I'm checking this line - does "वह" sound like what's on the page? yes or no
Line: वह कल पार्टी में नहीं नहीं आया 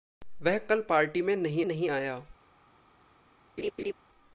yes